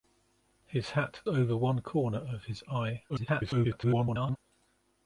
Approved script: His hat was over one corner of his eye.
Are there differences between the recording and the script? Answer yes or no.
yes